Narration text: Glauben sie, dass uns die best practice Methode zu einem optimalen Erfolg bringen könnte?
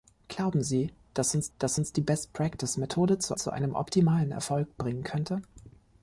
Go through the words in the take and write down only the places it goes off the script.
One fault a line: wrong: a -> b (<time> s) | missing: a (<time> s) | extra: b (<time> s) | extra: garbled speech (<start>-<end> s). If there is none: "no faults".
extra: dass uns (1.6 s)
extra: zu (3.3 s)